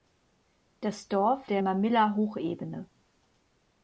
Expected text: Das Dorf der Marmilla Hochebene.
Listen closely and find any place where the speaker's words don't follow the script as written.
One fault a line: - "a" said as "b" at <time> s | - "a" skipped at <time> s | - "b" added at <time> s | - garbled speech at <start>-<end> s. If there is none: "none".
none